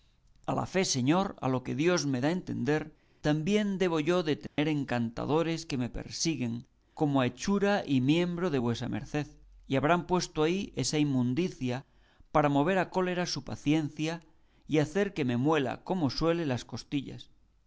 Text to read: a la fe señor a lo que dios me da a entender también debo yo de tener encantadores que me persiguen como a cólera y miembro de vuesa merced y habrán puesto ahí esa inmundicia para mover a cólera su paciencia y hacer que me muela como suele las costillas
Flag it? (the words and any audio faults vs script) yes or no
yes